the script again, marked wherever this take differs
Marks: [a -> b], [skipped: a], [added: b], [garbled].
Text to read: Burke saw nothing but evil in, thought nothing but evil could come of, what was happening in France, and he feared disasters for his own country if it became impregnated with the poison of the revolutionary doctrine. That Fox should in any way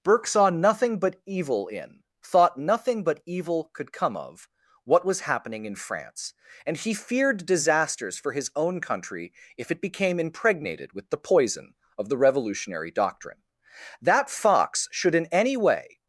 Burke saw nothing but evil in, thought nothing but evil could come of, what was happening in France, and he feared disasters for his own country if it became impregnated with the poison of the revolutionary doctrine. That Fox should in any way